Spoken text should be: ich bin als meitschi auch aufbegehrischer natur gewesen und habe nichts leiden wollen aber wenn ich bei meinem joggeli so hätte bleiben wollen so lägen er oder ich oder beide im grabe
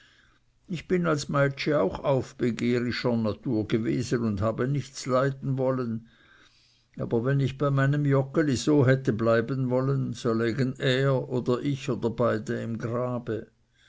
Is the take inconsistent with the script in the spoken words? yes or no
no